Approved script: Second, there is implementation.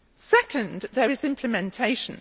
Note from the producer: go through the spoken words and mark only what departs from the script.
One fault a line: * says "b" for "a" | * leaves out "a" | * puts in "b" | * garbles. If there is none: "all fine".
all fine